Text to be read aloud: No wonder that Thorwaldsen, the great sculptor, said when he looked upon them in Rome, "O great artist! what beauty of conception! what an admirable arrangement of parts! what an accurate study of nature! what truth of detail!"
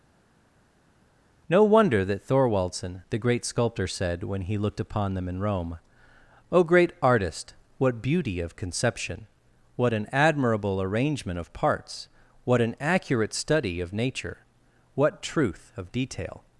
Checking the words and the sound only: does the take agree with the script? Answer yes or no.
yes